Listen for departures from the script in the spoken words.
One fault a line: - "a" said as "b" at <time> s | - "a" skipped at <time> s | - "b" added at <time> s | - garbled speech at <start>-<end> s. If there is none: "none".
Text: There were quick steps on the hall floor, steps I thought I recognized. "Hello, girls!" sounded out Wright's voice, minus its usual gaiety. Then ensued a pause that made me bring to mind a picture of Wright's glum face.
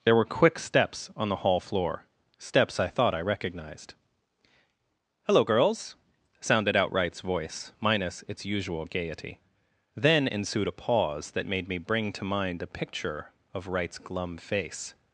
none